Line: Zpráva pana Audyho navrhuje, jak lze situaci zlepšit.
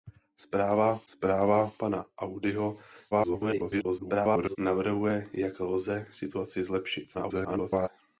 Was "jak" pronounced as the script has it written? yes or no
yes